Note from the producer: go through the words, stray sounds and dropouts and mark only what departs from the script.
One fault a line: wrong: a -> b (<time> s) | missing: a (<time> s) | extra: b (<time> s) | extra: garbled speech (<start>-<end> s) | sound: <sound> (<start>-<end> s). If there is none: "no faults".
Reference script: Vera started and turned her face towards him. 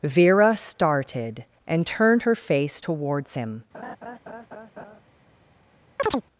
sound: laugh (3.7-5.0 s)
sound: chirp (6.0-6.2 s)